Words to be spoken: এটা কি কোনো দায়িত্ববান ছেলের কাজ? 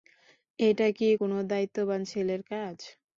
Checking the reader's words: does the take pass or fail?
pass